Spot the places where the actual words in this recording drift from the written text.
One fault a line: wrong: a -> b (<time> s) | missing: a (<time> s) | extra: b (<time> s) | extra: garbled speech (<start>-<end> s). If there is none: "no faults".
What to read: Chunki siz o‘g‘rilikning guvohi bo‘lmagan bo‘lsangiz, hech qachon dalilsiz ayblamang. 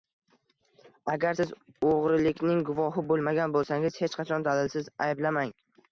wrong: Chunki -> Agar (1.1 s)